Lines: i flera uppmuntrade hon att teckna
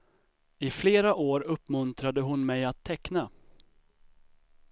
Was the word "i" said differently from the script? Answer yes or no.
no